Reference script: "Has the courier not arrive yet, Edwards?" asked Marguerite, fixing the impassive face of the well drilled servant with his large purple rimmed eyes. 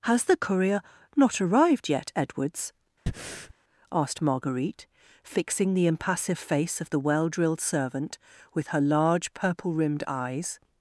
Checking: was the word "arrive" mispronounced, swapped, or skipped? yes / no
yes